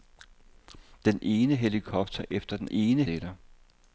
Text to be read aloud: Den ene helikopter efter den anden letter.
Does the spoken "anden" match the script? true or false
false